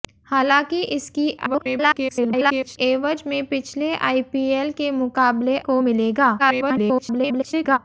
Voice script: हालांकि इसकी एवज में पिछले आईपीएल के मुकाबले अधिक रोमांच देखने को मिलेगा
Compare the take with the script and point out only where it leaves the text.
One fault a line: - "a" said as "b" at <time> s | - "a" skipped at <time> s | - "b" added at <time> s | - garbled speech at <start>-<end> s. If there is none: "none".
- garbled speech at 1.4-2.8 s
- "अधिक रोमांच देखने" skipped at 5.6 s
- garbled speech at 6.4-7.8 s